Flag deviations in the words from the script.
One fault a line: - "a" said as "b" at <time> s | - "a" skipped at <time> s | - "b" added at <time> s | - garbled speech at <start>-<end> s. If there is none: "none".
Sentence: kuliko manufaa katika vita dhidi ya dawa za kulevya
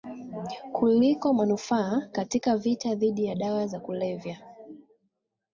none